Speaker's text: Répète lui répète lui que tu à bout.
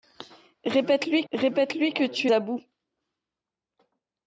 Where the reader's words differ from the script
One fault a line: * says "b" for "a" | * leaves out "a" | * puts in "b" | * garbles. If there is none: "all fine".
all fine